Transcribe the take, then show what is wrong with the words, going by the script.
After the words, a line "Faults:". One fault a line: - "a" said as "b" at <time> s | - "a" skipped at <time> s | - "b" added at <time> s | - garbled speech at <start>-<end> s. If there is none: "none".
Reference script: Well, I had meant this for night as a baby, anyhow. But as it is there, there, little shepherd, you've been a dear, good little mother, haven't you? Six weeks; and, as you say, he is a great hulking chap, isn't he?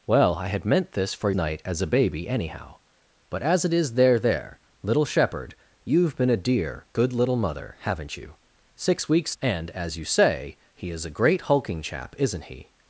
Well, I had meant this for night as a baby, anyhow. But as it is there, there, little shepherd, you've been a dear, good little mother, haven't you? Six weeks; and, as you say, he is a great hulking chap, isn't he?
Faults:
none